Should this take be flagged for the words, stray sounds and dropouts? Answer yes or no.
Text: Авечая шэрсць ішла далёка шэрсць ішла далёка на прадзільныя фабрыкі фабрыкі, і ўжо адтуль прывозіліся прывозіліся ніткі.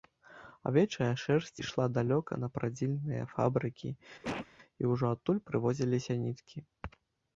yes